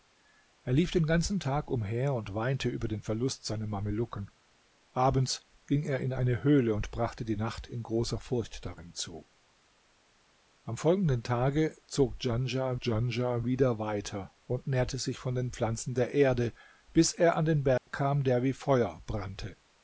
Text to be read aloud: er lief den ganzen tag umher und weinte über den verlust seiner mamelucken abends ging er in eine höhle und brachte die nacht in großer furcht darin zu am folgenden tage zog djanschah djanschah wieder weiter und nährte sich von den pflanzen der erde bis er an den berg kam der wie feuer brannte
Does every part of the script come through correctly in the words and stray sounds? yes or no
no